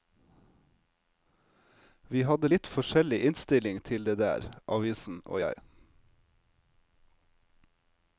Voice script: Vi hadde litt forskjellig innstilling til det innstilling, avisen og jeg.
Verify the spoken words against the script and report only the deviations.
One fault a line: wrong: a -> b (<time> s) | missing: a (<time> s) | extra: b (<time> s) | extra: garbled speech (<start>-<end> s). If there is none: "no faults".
wrong: innstilling -> der (4.2 s)